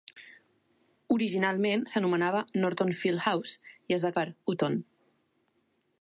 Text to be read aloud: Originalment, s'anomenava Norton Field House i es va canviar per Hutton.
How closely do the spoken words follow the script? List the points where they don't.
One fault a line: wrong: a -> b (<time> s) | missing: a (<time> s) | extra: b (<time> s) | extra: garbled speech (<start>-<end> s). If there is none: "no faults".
missing: canviar (4.1 s)